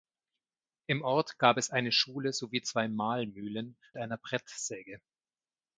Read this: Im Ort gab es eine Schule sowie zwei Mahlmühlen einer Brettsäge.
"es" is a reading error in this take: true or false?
false